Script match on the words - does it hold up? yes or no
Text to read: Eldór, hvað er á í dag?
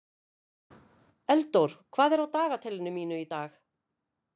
no